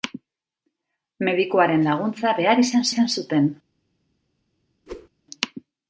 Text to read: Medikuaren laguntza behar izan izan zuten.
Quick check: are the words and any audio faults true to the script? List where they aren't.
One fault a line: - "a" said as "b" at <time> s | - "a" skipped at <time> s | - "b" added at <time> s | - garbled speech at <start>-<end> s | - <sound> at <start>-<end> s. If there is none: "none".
- whoosh at 4.9-5.1 s